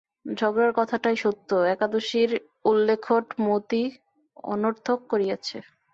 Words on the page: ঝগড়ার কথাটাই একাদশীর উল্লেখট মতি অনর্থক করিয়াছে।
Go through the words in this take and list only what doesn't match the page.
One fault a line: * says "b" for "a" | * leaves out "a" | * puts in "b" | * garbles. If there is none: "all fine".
* puts in "সত্য"